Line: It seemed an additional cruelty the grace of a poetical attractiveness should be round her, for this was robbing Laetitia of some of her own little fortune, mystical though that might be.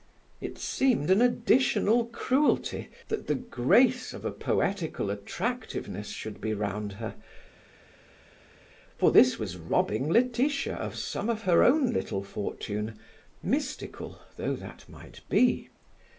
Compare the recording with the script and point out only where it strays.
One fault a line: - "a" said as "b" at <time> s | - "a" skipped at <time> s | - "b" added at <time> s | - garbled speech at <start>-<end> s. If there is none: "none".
- "that" added at 3.1 s